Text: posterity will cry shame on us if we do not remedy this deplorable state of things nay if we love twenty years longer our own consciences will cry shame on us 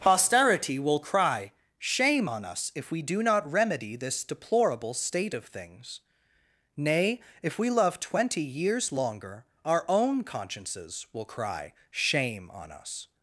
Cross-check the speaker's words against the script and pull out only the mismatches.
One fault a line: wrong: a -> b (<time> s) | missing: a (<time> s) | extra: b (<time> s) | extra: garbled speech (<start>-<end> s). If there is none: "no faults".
no faults